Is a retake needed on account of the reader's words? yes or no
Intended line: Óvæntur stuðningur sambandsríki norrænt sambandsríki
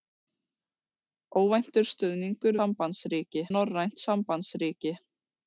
no